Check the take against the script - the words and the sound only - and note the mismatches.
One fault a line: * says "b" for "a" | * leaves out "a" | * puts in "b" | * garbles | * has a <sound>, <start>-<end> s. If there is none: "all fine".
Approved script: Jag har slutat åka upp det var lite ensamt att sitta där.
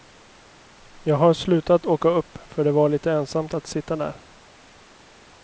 * puts in "för"